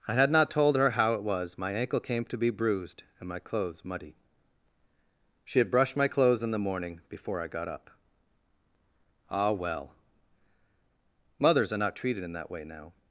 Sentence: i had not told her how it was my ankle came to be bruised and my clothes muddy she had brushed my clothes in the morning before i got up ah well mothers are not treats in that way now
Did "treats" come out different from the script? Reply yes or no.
yes